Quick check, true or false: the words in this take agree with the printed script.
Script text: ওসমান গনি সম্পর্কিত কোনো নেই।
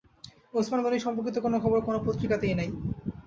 false